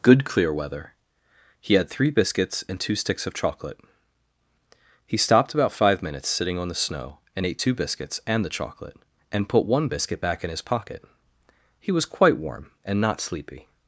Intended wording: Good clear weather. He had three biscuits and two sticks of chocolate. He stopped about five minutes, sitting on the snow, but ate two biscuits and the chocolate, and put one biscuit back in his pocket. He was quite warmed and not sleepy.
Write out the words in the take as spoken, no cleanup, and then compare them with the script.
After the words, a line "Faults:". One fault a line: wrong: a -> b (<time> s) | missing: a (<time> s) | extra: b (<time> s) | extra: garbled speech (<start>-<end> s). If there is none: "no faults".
Good clear weather. He had three biscuits and two sticks of chocolate. He stopped about five minutes, sitting on the snow, and ate two biscuits and the chocolate, and put one biscuit back in his pocket. He was quite warm and not sleepy.
Faults:
wrong: but -> and (7.3 s)
wrong: warmed -> warm (12.4 s)